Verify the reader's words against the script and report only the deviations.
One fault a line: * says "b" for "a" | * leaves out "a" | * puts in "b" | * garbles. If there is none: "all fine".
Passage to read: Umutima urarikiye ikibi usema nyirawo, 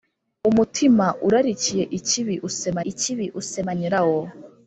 * puts in "ikibi usema"